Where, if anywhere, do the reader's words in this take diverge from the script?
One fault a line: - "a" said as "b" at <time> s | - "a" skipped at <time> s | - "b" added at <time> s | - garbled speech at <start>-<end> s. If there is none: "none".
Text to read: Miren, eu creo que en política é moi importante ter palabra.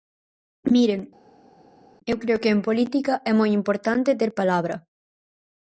none